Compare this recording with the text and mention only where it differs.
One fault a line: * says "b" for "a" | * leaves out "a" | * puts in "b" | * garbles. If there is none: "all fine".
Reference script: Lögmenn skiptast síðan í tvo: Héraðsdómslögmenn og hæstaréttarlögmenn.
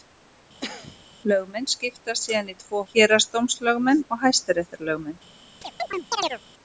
all fine